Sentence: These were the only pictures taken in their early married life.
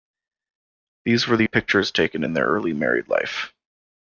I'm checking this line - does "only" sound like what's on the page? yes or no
no